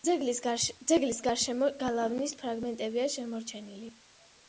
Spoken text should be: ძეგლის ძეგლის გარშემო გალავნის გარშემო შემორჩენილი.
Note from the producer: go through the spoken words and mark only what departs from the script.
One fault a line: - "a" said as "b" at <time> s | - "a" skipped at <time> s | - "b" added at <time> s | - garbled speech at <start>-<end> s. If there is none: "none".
- "ძეგლის" skipped at 1.2 s
- "გარშემო" said as "ფრაგმენტებია" at 2.4 s